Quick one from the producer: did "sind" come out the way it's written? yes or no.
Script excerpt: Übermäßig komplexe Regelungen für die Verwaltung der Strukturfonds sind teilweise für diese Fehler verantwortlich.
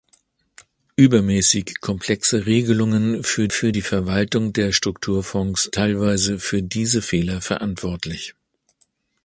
no